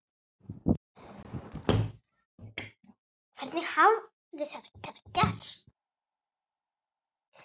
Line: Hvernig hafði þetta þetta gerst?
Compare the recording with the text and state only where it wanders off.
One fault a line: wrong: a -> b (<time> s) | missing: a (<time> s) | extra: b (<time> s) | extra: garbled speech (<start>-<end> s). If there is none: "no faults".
no faults